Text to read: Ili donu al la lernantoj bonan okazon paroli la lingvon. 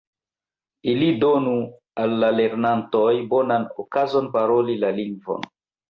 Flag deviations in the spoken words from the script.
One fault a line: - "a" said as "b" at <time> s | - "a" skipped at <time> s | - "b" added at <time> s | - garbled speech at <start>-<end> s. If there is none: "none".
none